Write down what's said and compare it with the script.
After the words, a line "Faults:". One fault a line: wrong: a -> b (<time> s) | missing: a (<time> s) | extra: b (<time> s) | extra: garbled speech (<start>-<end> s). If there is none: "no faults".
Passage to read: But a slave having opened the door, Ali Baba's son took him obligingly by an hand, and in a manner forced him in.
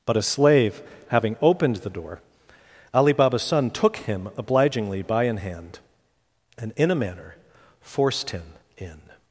But a slave having opened the door, Ali Baba's son took him obligingly by an hand, and in a manner forced him in.
Faults:
no faults